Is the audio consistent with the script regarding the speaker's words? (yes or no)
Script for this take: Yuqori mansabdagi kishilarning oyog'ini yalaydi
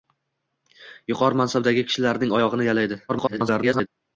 no